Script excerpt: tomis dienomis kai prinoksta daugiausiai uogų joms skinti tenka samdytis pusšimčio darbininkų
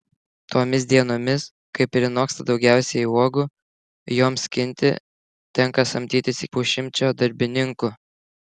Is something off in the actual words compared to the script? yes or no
no